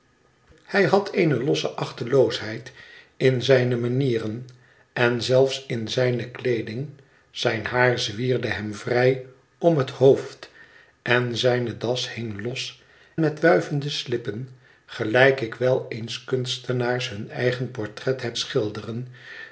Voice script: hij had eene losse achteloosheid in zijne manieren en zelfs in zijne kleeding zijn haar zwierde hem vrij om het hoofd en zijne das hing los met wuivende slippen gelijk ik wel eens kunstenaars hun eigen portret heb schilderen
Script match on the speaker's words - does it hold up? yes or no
yes